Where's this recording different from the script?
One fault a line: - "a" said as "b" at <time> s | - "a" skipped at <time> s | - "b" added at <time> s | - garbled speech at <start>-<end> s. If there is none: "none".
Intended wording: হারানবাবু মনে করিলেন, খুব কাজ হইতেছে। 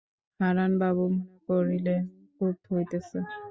- "কাজ" skipped at 2.5 s